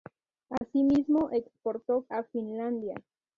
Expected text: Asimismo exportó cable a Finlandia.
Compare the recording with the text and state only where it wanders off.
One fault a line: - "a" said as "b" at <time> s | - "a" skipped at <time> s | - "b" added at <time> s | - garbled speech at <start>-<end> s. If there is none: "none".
- "cable" skipped at 2.1 s